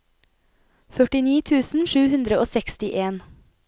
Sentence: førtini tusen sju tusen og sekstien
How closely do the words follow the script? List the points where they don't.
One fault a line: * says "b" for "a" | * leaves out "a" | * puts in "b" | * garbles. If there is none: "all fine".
* says "hundre" for "tusen"